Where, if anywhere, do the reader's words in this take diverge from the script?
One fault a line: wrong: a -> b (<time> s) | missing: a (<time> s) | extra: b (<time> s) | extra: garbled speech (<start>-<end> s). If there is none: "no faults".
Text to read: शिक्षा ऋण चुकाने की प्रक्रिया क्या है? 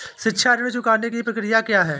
no faults